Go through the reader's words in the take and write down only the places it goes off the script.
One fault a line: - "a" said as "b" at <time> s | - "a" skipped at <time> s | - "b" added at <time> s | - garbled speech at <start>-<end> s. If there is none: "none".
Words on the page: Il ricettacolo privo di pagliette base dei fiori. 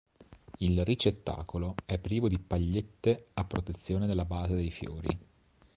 - "è" added at 1.9 s
- "a protezione della" added at 3.3 s